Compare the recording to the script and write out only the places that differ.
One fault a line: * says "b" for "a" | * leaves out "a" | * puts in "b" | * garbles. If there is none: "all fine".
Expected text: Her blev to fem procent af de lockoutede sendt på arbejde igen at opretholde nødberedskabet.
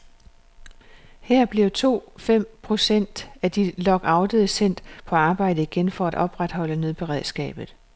* puts in "for"